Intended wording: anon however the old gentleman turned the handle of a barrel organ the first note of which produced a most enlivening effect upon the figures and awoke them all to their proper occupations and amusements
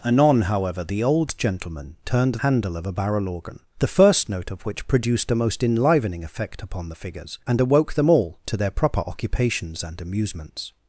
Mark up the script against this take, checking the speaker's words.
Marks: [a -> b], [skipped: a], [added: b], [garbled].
anon however the old gentleman turned [skipped: the] handle of a barrel organ the first note of which produced a most enlivening effect upon the figures and awoke them all to their proper occupations and amusements